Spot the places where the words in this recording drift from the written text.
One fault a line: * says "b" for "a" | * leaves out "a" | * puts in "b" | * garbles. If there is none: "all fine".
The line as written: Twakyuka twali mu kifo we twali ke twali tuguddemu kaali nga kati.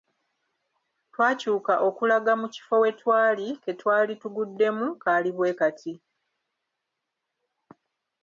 * says "okulaga" for "twali"
* says "bwe" for "nga"